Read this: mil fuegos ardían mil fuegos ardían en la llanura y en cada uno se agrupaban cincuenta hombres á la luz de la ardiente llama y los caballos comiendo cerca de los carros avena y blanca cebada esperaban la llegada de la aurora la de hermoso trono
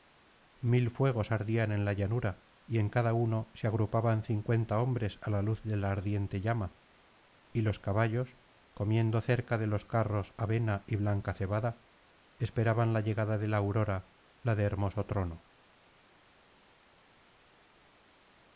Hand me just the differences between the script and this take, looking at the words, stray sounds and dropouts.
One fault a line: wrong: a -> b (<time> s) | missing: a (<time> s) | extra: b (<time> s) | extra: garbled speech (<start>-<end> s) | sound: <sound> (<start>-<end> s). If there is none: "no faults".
missing: mil fuegos ardían (1.7 s)